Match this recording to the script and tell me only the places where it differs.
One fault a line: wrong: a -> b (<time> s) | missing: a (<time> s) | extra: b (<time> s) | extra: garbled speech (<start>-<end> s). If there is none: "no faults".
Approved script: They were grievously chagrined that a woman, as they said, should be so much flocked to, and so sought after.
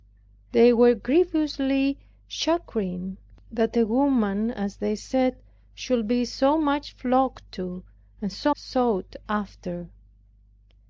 no faults